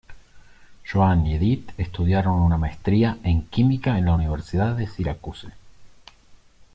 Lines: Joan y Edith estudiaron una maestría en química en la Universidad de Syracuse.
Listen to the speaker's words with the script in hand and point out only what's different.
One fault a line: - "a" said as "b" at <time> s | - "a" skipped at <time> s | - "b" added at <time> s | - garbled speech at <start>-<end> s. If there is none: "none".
none